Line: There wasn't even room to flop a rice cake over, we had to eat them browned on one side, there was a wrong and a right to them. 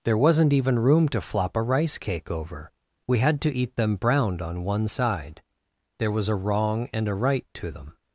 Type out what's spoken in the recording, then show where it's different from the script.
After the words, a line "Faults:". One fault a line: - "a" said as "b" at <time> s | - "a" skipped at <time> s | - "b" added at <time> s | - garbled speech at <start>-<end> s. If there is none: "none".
There wasn't even room to flop a rice cake over, we had to eat them browned on one side, there was a wrong and a right to them.
Faults:
none